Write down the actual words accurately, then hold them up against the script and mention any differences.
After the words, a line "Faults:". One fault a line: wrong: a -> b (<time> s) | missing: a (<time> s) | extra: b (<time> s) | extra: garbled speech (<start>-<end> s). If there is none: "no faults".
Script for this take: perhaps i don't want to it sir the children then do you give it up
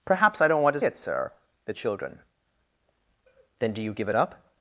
perhaps i don't want to it sir the children then do you give it up
Faults:
no faults